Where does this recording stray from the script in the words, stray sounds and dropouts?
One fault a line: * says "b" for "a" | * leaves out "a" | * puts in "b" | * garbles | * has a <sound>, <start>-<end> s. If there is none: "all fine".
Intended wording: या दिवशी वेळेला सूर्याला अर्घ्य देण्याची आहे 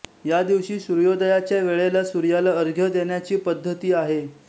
* puts in "सूर्योदयाच्या"
* puts in "पद्धती"